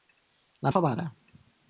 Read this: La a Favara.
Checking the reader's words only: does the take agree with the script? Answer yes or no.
yes